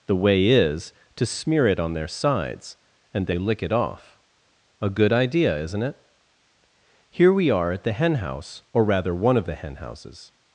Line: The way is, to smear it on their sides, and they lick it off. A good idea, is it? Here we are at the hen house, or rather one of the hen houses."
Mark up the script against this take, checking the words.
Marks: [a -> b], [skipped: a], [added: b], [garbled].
The way is, to smear it on their sides, and they lick it off. A good idea, [is -> isn't] it? Here we are at the hen house, or rather one of the hen houses."